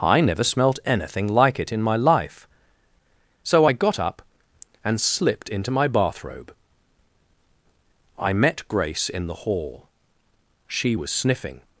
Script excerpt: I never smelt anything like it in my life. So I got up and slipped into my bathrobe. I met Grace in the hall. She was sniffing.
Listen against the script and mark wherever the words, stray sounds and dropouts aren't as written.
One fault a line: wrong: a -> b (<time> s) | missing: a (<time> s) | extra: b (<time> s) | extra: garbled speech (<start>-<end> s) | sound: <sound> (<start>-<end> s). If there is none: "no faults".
no faults